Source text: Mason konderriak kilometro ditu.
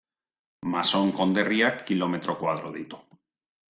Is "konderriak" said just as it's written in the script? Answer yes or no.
yes